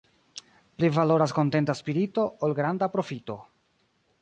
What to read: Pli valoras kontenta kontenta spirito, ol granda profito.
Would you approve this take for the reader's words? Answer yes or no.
no